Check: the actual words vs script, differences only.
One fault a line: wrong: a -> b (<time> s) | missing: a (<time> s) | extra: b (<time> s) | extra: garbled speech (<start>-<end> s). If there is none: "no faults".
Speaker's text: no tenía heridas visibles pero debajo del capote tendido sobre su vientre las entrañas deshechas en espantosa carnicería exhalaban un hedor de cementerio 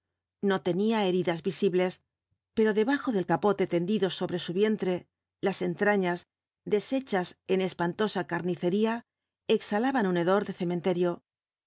no faults